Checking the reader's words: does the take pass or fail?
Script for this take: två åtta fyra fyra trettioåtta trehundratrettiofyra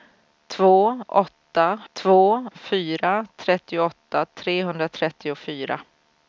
fail